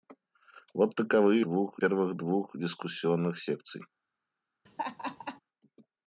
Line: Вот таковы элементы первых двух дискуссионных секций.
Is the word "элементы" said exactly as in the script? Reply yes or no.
no